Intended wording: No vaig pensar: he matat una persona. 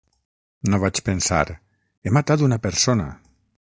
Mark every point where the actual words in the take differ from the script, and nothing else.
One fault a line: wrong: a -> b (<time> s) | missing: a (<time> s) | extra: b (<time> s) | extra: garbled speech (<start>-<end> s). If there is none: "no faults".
no faults